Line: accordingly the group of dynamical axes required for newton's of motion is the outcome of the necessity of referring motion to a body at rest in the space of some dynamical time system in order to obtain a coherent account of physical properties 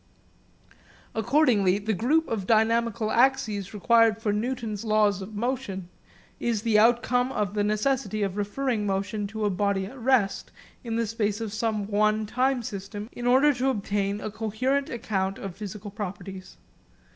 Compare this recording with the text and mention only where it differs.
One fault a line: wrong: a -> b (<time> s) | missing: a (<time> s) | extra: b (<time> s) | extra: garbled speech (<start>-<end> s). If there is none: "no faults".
extra: laws (4.8 s)
wrong: dynamical -> one (11.9 s)